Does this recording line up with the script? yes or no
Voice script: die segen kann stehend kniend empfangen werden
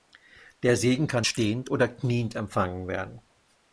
no